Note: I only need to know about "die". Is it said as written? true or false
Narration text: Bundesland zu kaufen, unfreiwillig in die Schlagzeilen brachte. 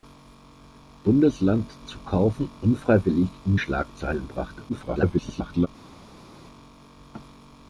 false